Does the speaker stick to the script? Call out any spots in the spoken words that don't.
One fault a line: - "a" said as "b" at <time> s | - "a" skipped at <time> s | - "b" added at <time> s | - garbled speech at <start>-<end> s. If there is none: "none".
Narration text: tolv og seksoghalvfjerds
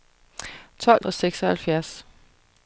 none